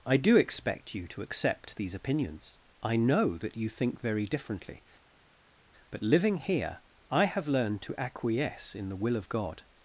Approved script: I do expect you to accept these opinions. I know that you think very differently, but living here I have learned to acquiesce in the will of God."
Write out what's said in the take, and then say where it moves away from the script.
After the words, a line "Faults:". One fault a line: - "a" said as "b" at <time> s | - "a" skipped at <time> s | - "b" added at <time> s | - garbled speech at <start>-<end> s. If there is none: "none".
I do expect you to accept these opinions. I know that you think very differently, but living here I have learned to acquiesce in the will of God."
Faults:
none